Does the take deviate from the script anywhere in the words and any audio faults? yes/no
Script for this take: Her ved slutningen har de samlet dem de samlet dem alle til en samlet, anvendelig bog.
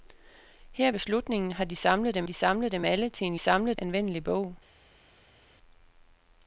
no